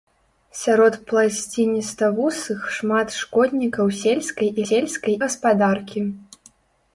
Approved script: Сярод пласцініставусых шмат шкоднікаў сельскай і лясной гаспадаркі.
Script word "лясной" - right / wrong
wrong